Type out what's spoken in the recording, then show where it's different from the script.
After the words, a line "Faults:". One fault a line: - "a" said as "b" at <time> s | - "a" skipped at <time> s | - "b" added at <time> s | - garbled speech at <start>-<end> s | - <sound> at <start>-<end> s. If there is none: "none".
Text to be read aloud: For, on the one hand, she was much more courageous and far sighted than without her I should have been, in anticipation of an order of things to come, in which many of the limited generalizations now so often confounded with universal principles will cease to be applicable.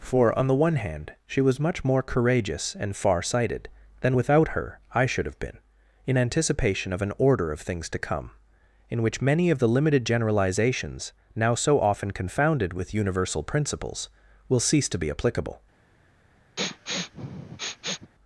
For, on the one hand, she was much more courageous and far sighted than without her I should have been, in anticipation of an order of things to come, in which many of the limited generalizations now so often confounded with universal principles will cease to be applicable.
Faults:
- sniff at 16.6-18.1 s